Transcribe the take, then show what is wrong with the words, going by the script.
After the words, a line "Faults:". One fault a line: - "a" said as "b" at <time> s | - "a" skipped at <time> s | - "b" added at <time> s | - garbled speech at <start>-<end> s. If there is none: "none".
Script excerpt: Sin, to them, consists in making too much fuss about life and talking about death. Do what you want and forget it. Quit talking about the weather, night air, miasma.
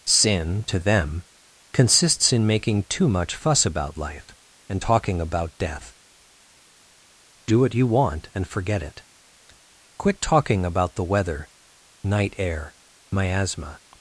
Sin, to them, consists in making too much fuss about life and talking about death. Do what you want and forget it. Quit talking about the weather, night air, miasma.
Faults:
none